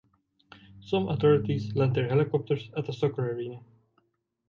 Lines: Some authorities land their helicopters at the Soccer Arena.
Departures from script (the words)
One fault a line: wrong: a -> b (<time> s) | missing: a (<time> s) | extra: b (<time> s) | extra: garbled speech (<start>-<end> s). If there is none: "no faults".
no faults